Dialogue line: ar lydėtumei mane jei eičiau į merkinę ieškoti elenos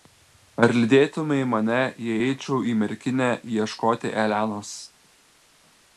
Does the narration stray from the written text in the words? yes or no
no